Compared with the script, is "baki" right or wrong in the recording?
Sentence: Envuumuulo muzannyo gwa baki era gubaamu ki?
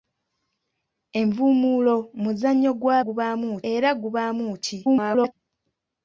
wrong